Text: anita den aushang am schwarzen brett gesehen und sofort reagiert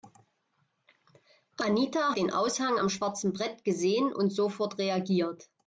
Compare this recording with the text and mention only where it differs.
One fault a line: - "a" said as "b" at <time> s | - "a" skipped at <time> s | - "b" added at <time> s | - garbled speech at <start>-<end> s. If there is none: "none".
none